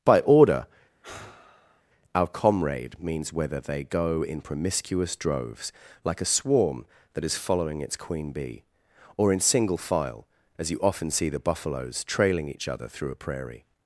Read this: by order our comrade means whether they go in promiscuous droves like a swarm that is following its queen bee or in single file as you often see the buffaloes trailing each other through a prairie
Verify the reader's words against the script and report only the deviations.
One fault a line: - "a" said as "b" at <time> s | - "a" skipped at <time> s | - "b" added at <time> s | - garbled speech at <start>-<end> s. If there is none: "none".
none